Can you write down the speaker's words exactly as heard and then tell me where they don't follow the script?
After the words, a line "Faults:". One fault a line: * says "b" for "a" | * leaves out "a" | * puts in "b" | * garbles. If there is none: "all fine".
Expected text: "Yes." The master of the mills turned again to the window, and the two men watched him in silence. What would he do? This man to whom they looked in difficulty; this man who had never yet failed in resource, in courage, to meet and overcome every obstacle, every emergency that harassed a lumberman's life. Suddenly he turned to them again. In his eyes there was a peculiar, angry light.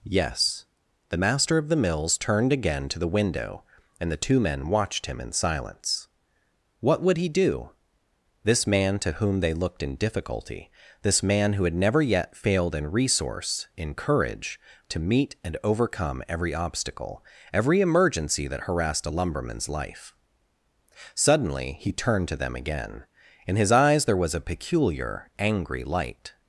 "Yes." The master of the mills turned again to the window, and the two men watched him in silence. What would he do? This man to whom they looked in difficulty; this man who had never yet failed in resource, in courage, to meet and overcome every obstacle, every emergency that harassed a lumberman's life. Suddenly he turned to them again. In his eyes there was a peculiar, angry light.
Faults:
all fine